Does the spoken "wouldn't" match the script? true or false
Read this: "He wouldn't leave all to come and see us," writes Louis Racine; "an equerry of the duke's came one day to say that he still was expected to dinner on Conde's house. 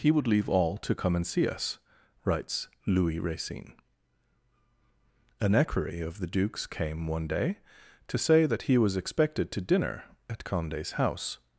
false